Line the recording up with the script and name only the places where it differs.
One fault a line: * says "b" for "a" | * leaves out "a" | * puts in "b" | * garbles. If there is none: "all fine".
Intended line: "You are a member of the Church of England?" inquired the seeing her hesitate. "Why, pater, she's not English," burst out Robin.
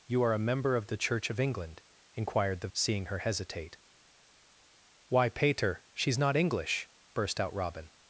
all fine